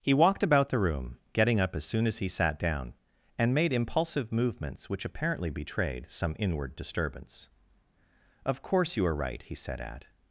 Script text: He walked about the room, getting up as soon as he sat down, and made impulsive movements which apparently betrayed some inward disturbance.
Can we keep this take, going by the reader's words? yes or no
no